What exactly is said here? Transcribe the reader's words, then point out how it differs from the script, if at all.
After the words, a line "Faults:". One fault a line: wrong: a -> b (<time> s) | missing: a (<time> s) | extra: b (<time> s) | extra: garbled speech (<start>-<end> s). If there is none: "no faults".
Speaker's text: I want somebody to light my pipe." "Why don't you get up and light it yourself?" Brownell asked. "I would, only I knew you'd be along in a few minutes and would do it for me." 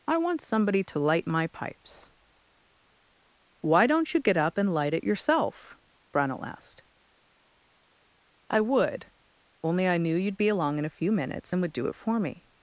I want somebody to light my pipes." "Why don't you get up and light it yourself?" Brownell asked. "I would, only I knew you'd be along in a few minutes and would do it for me."
Faults:
wrong: pipe -> pipes (1.5 s)